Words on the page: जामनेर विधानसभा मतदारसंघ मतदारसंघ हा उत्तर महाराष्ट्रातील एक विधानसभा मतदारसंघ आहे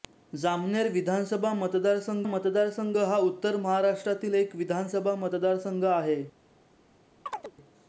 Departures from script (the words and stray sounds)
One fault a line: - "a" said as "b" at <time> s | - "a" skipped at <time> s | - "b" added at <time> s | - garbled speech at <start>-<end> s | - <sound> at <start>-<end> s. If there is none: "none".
- chirp at 7.3-7.5 s